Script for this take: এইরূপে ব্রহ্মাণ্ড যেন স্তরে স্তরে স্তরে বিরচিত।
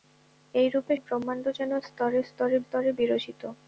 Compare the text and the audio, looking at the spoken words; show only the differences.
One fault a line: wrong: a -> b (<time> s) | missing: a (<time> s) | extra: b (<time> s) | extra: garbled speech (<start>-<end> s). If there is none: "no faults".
no faults